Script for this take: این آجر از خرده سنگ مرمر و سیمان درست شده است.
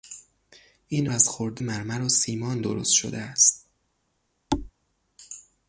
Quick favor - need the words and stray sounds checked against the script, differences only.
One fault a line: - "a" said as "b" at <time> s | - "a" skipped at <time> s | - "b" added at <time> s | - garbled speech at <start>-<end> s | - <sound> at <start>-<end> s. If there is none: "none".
- "آجر" skipped at 1.1 s
- "سنگ" skipped at 1.6 s
- thud at 4.5-4.7 s